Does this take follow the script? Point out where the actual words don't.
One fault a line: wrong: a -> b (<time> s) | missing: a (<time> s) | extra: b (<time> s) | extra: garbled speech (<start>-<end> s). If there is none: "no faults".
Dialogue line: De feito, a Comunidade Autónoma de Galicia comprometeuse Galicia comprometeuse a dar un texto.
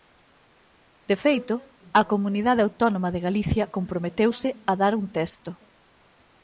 missing: Galicia comprometeuse (4.5 s)